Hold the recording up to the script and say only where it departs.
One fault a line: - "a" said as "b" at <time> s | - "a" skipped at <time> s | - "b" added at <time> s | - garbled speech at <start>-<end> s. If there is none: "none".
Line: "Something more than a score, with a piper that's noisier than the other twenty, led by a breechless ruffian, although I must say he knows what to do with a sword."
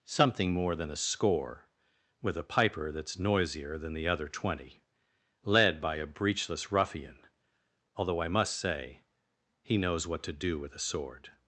none